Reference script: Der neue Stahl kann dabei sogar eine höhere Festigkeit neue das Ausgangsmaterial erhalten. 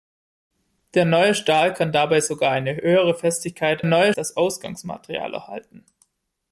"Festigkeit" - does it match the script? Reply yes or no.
yes